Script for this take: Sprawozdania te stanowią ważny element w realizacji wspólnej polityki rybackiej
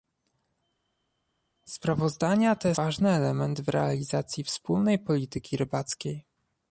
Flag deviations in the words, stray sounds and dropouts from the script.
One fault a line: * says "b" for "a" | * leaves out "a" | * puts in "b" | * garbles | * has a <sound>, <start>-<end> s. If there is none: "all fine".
* leaves out "stanowią"